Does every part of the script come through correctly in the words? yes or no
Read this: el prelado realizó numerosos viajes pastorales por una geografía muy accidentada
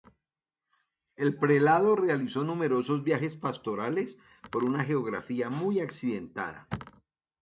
yes